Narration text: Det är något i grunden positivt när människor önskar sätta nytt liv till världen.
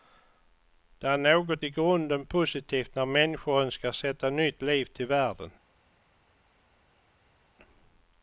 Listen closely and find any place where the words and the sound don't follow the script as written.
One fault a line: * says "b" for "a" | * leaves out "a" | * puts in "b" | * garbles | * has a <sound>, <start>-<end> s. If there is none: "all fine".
all fine